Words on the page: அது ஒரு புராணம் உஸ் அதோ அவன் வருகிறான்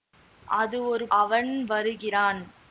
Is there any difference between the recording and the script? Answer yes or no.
yes